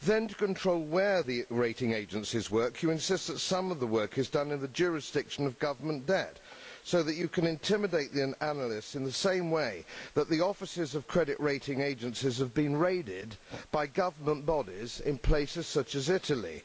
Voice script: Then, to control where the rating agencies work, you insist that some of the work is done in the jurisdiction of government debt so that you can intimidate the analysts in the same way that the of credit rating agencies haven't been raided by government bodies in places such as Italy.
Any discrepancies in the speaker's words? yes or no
yes